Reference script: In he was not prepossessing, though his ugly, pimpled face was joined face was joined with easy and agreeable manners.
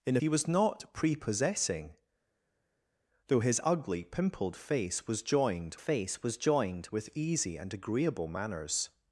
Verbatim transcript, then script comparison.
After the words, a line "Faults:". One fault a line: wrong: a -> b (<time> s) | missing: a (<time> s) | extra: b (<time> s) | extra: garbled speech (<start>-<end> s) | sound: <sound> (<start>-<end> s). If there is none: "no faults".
In he was not prepossessing, though his ugly, pimpled face was joined face was joined with easy and agreeable manners.
Faults:
no faults